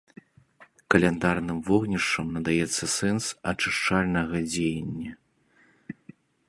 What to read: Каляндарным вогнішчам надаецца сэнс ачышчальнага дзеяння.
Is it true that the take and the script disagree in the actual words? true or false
false